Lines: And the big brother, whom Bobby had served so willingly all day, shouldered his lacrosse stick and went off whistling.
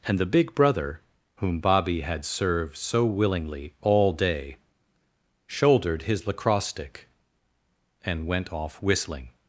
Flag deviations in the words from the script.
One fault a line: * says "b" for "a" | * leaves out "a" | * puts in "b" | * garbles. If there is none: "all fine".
all fine